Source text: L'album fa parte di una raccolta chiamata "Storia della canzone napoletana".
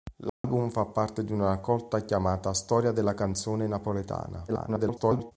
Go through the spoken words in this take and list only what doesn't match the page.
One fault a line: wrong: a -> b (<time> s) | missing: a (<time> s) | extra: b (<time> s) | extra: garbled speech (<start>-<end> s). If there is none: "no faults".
extra: garbled speech (4.5-5.3 s)